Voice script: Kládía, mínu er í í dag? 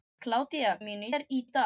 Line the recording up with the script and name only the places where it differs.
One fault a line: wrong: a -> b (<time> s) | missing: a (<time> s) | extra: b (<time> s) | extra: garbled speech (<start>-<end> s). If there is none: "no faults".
no faults